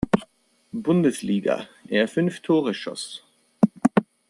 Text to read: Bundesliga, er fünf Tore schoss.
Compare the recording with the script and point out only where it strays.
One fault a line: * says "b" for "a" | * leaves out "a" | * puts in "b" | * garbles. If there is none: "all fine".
all fine